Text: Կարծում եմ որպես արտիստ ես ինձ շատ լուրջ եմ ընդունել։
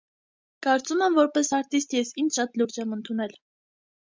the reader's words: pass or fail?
pass